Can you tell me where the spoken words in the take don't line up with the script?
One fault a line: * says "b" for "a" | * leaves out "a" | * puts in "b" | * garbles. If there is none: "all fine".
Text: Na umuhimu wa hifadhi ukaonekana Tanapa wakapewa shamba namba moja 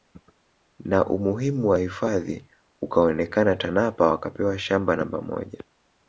all fine